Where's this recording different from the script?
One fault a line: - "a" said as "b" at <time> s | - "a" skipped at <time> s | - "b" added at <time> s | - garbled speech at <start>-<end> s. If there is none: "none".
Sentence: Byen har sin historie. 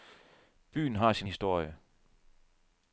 none